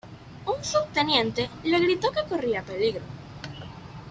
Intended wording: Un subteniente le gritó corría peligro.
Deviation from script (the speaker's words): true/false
true